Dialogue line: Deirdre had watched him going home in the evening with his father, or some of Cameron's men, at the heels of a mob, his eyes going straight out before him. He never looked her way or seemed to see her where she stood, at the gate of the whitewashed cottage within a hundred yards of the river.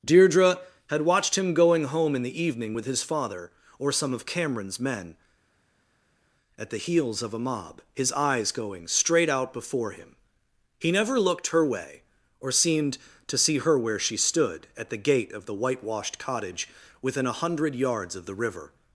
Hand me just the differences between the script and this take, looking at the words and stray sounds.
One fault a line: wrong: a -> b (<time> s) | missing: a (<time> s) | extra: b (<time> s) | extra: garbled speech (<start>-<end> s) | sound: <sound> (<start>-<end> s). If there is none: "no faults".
no faults